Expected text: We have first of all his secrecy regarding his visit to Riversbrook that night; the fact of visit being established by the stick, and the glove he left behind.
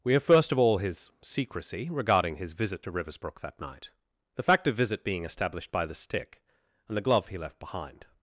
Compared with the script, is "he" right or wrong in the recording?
right